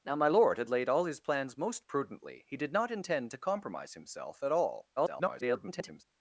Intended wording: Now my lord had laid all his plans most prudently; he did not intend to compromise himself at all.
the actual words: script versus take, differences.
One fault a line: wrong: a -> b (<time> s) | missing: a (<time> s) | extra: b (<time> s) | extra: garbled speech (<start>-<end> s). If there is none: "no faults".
extra: garbled speech (5.0-6.0 s)